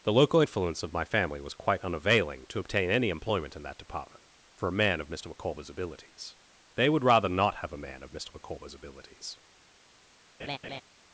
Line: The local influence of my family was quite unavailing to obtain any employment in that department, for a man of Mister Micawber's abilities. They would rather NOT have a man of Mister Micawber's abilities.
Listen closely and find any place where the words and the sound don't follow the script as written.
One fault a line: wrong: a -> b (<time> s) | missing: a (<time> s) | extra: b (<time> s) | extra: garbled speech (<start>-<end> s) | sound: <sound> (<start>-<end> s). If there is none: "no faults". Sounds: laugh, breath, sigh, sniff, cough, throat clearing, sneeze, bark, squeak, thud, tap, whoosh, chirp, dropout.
sound: laugh (10.4-10.8 s)